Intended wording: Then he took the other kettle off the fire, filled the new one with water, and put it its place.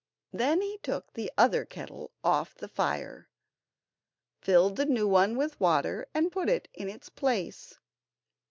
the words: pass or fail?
fail